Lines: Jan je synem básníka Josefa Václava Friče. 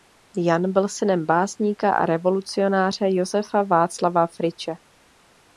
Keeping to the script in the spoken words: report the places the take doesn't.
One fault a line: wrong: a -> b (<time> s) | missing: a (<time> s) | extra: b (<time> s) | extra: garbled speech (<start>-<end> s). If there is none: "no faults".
wrong: je -> byl (0.7 s)
extra: a revolucionáře (1.9 s)